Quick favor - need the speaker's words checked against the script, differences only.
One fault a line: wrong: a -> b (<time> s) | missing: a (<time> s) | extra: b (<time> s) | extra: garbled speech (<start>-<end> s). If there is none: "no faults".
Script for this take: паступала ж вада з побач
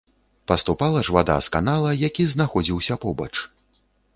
extra: канала які знаходзіўся (1.5 s)